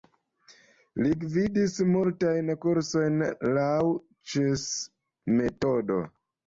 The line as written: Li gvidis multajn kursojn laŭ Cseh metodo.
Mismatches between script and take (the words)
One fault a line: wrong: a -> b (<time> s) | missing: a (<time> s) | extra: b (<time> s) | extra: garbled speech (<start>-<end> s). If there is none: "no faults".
no faults